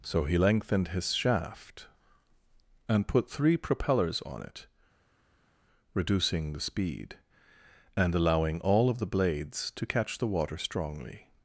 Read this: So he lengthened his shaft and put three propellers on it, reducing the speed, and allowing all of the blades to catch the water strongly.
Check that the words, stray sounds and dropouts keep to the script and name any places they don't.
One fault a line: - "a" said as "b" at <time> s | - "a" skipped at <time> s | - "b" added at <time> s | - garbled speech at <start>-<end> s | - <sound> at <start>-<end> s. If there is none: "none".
none